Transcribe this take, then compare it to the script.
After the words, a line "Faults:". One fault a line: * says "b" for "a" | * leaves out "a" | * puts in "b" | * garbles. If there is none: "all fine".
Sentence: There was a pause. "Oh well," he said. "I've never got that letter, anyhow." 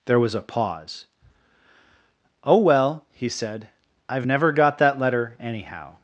There was a pause. "Oh well," he said. "I've never got that letter, anyhow."
Faults:
all fine